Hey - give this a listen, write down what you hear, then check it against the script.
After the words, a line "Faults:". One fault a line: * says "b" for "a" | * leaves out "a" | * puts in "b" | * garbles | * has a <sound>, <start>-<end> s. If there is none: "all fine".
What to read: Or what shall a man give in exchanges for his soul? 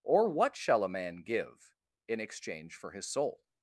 Or what shall a man give in exchange for his soul?
Faults:
* says "exchange" for "exchanges"